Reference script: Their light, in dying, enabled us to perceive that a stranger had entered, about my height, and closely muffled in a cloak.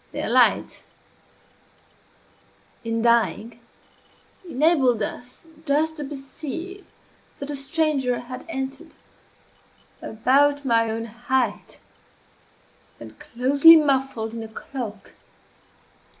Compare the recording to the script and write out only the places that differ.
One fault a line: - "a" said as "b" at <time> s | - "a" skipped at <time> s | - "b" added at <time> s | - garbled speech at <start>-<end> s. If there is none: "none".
- "just" added at 5.6 s
- "own" added at 10.9 s